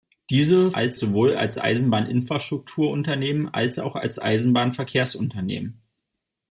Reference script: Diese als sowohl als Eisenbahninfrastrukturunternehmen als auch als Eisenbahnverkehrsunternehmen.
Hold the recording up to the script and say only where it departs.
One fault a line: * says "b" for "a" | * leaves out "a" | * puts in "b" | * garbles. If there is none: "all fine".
all fine